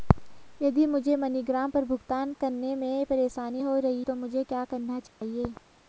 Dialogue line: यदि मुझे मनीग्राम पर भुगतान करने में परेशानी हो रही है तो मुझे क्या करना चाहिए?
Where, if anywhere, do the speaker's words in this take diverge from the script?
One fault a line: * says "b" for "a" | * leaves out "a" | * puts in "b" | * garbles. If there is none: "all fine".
* leaves out "है"